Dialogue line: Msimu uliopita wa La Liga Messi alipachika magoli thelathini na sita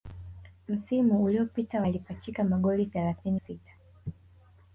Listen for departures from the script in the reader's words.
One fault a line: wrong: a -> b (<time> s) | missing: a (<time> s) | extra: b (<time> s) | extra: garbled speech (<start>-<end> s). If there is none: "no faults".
missing: La Liga Messi (1.9 s)
missing: na (3.4 s)